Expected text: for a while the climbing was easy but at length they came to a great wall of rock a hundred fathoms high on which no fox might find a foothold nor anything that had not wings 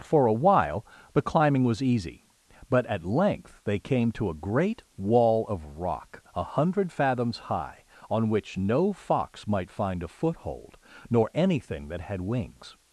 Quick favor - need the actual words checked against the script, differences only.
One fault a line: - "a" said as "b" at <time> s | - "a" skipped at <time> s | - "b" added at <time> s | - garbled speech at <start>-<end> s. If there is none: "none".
- "not" skipped at 12.2 s